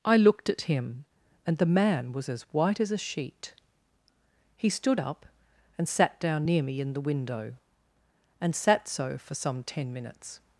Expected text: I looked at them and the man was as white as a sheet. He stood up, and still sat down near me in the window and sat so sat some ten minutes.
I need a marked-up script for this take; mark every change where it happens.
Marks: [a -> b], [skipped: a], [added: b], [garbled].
I looked at [them -> him] and the man was as white as a sheet. He stood up, and [skipped: still] sat down near me in the window and sat so [sat -> for] some ten minutes.